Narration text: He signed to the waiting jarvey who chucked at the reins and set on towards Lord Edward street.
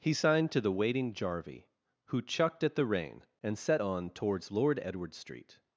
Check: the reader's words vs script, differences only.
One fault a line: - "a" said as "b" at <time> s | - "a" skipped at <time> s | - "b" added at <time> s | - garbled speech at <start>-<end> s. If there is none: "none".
- "reins" said as "rein" at 2.9 s